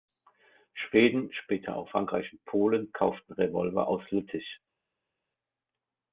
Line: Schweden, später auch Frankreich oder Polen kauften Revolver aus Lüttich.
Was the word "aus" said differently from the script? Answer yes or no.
no